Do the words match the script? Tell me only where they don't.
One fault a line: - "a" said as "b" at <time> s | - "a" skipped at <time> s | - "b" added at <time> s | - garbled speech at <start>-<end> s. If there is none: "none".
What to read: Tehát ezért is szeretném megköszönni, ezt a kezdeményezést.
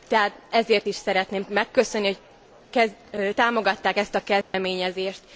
- "hogy támogatták" added at 2.7 s